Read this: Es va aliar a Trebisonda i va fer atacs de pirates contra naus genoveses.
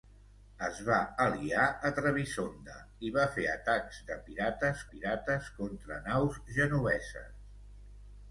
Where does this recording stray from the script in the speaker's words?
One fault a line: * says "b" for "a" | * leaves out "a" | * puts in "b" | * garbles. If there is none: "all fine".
* puts in "pirates"